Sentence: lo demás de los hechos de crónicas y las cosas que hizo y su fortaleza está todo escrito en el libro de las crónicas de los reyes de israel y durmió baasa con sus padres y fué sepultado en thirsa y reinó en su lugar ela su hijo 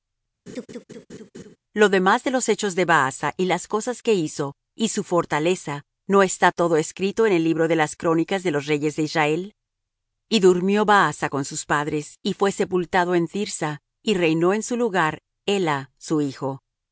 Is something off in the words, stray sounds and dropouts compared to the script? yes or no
yes